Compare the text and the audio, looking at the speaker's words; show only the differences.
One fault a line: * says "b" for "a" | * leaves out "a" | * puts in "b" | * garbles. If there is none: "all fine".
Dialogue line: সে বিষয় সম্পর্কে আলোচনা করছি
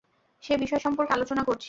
all fine